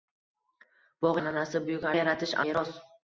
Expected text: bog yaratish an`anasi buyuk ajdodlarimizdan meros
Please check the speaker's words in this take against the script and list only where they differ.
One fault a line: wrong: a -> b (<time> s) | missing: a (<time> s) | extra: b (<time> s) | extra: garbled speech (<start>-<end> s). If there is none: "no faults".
missing: yaratish (1.2 s)
wrong: ajdodlarimizdan -> yaratish (2.0 s)